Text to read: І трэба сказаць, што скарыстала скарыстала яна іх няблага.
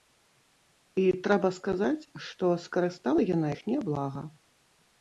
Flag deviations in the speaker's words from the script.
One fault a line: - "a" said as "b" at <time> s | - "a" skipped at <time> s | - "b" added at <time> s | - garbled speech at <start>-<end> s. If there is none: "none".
- "скарыстала" skipped at 3.2 s